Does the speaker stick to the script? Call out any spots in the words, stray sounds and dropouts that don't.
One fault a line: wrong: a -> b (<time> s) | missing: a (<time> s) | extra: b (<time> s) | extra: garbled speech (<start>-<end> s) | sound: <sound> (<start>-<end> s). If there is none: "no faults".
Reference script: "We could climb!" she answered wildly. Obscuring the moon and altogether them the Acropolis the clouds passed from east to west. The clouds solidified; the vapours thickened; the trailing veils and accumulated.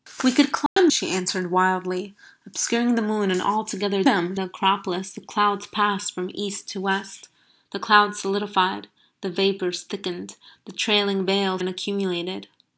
sound: dropout (0.7-0.8 s)